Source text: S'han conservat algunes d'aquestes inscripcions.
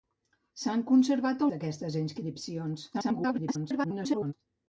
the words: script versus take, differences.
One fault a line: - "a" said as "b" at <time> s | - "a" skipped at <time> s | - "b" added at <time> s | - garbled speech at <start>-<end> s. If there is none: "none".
- "algunes" skipped at 1.4 s
- garbled speech at 2.9-4.3 s